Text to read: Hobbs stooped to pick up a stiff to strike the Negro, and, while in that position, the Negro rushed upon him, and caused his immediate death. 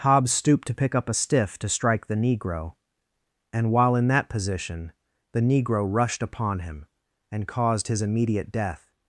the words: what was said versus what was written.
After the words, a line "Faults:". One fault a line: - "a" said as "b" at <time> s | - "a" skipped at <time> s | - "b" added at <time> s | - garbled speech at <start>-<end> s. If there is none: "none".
Hobbs stooped to pick up a stiff to strike the Negro, and, while in that position, the Negro rushed upon him, and caused his immediate death.
Faults:
none